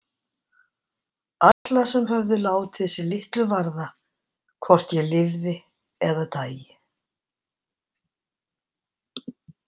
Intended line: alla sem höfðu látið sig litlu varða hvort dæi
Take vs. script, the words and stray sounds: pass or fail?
fail